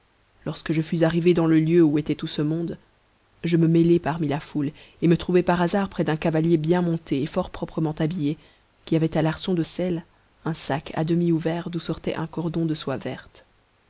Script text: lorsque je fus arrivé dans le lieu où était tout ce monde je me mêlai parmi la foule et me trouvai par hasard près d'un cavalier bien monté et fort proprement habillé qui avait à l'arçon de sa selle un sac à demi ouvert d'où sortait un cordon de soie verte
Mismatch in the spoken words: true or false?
true